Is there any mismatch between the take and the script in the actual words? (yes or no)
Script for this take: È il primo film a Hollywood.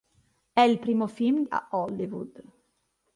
no